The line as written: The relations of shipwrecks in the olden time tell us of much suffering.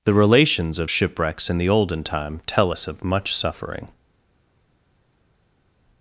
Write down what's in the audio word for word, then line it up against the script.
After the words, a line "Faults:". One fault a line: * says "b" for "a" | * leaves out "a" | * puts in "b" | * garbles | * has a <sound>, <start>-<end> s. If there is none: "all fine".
The relations of shipwrecks in the olden time tell us of much suffering.
Faults:
all fine